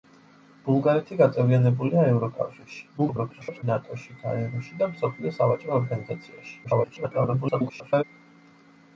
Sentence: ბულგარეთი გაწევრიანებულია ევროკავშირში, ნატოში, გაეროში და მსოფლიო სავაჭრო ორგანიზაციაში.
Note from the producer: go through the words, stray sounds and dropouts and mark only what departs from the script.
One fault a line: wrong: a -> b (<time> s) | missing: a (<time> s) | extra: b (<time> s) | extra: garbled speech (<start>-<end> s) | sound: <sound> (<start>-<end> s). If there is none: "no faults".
extra: garbled speech (3.0-3.6 s)
extra: garbled speech (6.6-8.0 s)